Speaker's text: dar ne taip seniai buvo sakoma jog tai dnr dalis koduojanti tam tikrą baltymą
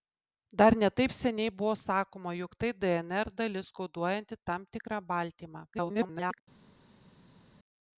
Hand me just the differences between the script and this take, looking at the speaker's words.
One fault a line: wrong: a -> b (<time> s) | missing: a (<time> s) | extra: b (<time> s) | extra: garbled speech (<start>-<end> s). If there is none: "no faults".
extra: garbled speech (5.7-6.4 s)